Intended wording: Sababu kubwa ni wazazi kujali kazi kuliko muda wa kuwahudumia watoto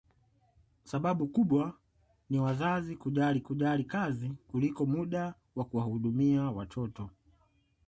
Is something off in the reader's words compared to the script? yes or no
yes